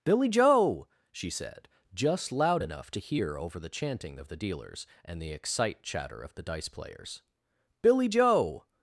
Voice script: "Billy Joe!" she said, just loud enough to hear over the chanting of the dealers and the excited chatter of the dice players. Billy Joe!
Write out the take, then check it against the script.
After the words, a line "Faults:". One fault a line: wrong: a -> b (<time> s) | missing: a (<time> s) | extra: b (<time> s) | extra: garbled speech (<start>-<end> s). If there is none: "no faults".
"Billy Joe!" she said, just loud enough to hear over the chanting of the dealers and the excite chatter of the dice players. Billy Joe!
Faults:
wrong: excited -> excite (5.3 s)